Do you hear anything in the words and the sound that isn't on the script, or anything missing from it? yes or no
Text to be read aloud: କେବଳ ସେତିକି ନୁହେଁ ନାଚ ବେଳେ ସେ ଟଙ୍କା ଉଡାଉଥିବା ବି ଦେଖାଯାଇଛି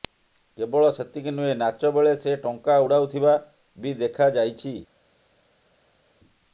no